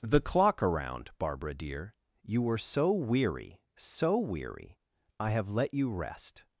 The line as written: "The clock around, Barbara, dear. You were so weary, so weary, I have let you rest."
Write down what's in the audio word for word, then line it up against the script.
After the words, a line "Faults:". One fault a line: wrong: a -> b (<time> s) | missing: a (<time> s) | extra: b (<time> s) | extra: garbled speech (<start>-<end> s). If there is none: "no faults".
"The clock around, Barbara, dear. You were so weary, so weary, I have let you rest."
Faults:
no faults